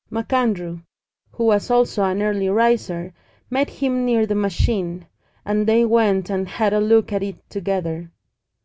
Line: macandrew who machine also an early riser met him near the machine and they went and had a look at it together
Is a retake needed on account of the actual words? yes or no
yes